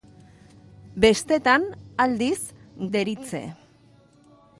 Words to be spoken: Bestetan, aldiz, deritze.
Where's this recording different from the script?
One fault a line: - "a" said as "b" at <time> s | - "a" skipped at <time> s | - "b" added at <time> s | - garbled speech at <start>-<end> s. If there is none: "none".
none